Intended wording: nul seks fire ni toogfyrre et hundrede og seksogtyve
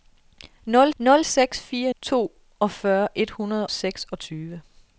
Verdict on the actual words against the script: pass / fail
fail